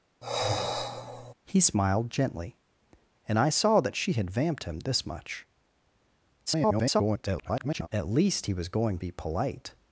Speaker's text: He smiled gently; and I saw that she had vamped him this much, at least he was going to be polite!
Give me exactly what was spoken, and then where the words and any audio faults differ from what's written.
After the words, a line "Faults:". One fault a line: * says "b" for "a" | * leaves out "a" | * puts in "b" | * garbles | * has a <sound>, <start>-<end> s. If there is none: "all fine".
He smiled gently; and I saw that she had vamped him this much, [garbled] at least he was going be polite!
Faults:
* has a sigh, 0.2-1.3 s
* garbles
* leaves out "to"